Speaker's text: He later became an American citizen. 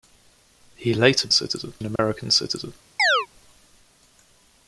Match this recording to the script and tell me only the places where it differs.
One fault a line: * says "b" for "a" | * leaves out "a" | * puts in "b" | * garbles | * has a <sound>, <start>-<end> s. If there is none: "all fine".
* says "citizen" for "became"
* has a dropout, 2.0-2.0 s
* has a chirp, 3.0-3.3 s